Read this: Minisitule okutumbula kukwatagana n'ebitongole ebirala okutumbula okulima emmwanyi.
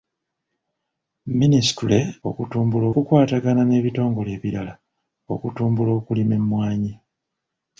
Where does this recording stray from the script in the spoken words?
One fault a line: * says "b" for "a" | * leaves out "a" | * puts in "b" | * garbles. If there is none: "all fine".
all fine